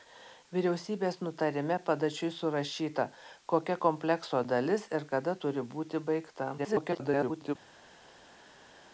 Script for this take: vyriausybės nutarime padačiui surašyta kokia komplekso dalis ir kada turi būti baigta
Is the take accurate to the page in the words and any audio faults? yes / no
no